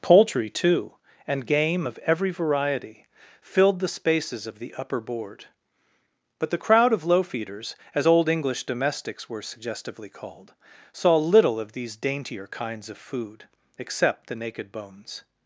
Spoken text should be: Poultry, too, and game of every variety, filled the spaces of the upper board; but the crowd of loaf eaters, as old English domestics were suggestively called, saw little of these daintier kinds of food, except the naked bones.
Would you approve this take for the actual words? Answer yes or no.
yes